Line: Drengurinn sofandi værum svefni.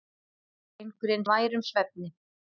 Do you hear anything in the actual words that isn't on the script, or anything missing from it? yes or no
yes